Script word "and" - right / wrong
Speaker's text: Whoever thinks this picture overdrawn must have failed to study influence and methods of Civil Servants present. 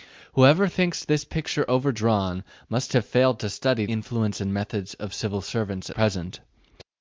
right